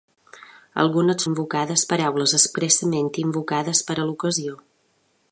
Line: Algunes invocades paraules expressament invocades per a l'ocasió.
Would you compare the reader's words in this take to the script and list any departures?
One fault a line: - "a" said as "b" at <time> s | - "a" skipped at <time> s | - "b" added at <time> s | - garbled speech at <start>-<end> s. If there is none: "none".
none